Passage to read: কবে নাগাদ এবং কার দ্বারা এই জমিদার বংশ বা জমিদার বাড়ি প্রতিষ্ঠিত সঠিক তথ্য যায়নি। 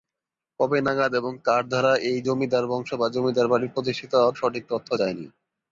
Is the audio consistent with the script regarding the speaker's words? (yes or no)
yes